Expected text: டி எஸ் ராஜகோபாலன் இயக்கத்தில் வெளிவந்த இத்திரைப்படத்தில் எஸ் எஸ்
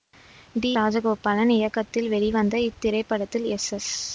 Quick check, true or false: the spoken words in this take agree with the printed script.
false